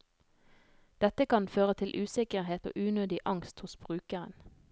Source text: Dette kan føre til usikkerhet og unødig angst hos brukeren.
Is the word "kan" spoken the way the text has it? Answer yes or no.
yes